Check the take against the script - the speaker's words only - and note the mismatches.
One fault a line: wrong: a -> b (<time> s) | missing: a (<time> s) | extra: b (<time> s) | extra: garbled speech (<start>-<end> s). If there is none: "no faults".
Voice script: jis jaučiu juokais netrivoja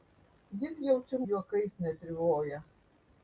no faults